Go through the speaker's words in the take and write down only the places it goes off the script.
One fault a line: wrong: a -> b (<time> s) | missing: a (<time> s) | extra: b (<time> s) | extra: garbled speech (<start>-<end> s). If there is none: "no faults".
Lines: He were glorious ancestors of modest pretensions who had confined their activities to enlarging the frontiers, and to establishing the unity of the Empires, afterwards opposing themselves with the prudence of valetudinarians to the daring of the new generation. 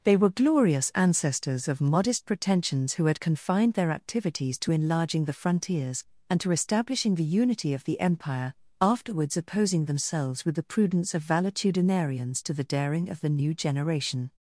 wrong: He -> They (0.0 s)
wrong: Empires -> Empire (8.0 s)